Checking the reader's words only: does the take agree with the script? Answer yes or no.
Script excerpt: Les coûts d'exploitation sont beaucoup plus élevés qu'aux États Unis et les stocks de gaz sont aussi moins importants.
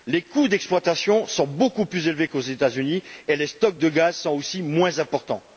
yes